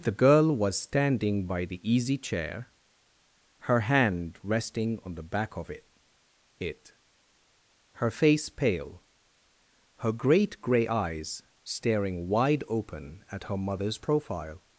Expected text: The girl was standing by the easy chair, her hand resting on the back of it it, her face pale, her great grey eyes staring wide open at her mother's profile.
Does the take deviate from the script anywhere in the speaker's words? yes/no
no